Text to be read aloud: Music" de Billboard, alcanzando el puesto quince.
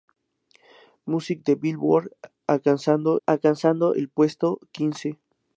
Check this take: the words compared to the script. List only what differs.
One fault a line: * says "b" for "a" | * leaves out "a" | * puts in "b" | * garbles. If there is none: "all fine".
* puts in "alcanzando"